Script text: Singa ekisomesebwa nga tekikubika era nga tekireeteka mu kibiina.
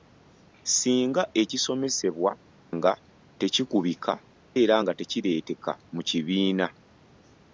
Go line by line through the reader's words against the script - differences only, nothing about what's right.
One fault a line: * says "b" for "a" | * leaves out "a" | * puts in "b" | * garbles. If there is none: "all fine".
all fine